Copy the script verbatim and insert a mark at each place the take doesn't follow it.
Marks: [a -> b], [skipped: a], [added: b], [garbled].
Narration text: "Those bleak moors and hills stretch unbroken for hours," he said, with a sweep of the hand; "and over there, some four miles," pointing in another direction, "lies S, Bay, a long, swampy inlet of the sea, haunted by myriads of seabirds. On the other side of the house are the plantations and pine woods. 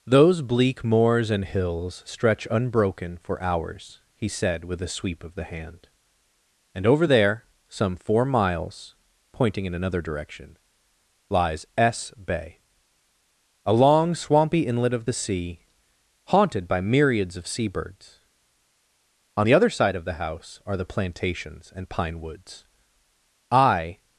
"Those bleak moors and hills stretch unbroken for hours," he said, with a sweep of the hand; "and over there, some four miles," pointing in another direction, "lies S, Bay, a long, swampy inlet of the sea, haunted by myriads of seabirds. On the other side of the house are the plantations and pine woods. [added: I]